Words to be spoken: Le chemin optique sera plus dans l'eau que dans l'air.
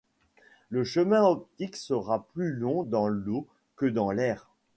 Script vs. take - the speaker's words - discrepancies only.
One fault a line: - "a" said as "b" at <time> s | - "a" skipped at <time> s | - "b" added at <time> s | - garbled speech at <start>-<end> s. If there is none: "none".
- "long" added at 2.5 s